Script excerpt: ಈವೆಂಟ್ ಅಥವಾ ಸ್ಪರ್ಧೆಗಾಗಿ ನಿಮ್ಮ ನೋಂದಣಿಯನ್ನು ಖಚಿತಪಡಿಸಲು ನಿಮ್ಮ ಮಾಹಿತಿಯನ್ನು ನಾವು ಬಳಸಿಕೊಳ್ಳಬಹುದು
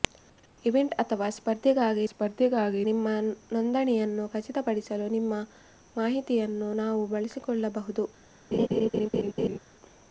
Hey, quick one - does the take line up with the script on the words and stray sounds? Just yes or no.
no